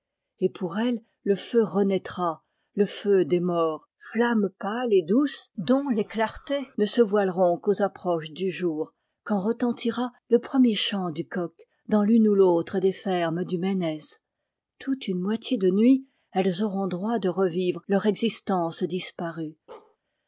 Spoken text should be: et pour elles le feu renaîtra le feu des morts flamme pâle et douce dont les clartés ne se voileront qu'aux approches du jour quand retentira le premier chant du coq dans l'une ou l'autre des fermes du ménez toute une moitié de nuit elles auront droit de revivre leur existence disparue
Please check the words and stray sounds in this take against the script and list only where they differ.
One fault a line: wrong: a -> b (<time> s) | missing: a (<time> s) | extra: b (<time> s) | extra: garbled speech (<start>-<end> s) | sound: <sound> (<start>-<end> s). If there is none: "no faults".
sound: bark (19.7-20.0 s)